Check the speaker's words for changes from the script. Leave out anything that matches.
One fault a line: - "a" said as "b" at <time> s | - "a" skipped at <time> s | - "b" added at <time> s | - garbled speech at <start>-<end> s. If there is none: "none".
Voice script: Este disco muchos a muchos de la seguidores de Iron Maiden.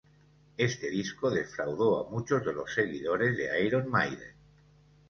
- "muchos" said as "defraudó" at 1.3 s
- "la" said as "los" at 2.5 s